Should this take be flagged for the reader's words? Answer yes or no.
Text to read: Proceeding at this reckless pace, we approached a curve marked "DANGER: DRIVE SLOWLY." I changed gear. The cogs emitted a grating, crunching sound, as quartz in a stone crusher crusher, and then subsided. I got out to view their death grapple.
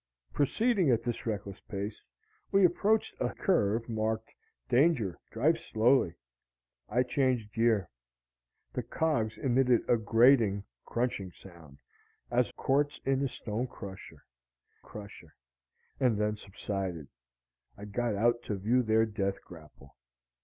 no